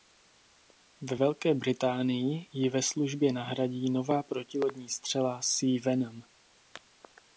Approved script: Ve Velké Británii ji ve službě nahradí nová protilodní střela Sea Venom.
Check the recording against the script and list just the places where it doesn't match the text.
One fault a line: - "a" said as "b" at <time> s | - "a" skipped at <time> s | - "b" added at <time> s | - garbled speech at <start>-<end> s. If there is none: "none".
none